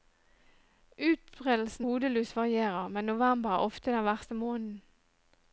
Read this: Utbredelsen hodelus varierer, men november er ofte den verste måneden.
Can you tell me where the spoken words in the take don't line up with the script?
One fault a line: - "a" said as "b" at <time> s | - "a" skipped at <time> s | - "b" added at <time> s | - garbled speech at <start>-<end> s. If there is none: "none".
none